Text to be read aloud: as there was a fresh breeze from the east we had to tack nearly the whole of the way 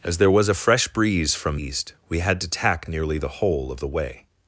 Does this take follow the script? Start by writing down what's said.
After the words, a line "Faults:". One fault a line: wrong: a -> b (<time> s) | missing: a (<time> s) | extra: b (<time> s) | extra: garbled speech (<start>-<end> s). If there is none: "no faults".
as there was a fresh breeze from east we had to tack nearly the whole of the way
Faults:
missing: the (1.6 s)